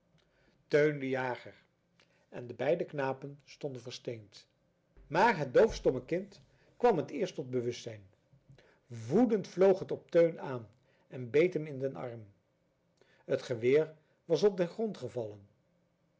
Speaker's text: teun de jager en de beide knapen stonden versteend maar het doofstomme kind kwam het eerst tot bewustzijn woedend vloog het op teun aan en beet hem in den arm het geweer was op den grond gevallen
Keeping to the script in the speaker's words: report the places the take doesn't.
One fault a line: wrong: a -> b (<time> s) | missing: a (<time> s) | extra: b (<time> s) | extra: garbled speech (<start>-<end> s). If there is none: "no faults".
no faults